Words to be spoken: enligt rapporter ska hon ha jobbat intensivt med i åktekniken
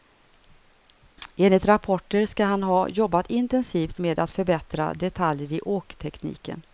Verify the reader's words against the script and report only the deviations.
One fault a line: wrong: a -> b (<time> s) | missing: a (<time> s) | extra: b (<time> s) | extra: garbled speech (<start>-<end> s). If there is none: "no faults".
wrong: hon -> han (2.5 s)
extra: att förbättra detaljer (4.2 s)